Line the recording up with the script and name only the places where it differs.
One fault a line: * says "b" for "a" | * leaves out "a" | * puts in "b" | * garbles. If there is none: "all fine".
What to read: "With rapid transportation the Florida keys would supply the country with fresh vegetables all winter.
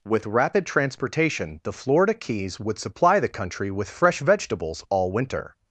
all fine